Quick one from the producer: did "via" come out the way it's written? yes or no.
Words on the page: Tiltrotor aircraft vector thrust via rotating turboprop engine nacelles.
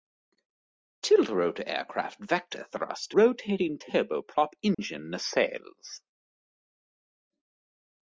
no